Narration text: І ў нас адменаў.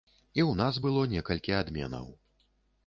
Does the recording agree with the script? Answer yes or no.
no